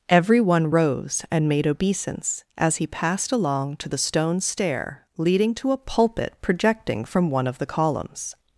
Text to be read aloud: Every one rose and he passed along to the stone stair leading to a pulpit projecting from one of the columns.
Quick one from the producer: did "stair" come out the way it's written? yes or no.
yes